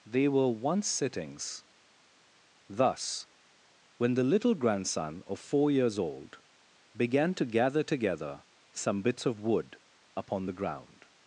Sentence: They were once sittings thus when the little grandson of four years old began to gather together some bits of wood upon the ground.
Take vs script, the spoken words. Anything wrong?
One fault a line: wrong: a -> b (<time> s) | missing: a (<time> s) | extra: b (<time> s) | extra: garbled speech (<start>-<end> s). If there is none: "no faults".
no faults